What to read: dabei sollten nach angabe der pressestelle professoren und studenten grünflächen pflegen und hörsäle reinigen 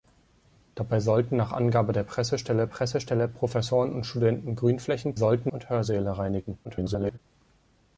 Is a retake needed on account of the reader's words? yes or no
yes